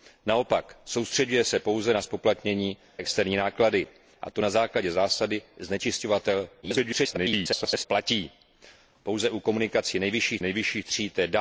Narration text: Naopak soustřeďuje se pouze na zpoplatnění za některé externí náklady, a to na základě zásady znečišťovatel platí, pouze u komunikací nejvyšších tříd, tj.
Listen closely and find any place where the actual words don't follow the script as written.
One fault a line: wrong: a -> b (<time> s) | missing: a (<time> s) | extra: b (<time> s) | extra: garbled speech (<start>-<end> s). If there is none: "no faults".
missing: za některé (2.8 s)
extra: garbled speech (6.6-7.9 s)
extra: nejvyšších (10.4 s)